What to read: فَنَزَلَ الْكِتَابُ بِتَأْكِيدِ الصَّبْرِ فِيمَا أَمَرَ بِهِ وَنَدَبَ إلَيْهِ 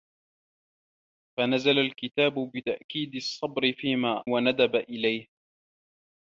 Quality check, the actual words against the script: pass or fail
fail